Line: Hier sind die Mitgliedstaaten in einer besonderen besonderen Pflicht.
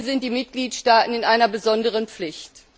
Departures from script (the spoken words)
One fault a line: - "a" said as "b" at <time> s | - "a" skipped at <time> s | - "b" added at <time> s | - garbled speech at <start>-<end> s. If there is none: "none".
- "besonderen" skipped at 2.1 s